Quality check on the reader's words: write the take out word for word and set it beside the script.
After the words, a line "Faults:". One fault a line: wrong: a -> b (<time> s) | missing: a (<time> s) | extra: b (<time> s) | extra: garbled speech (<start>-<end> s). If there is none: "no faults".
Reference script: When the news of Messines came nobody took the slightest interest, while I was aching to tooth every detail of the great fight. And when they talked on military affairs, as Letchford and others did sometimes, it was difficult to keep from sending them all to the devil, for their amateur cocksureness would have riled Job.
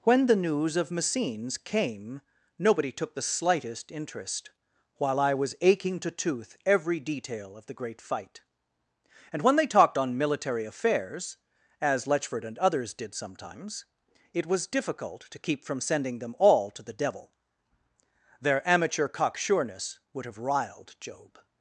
When the news of Messines came nobody took the slightest interest, while I was aching to tooth every detail of the great fight. And when they talked on military affairs, as Letchford and others did sometimes, it was difficult to keep from sending them all to the devil, their amateur cocksureness would have riled Job.
Faults:
missing: for (17.3 s)